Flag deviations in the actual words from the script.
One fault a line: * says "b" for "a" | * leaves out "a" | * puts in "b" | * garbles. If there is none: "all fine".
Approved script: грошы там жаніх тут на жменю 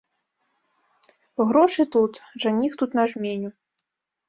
* says "тут" for "там"